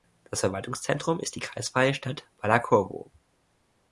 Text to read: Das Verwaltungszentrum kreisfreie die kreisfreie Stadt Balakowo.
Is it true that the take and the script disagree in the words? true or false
true